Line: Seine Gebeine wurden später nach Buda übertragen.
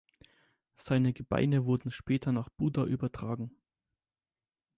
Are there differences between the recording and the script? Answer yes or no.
no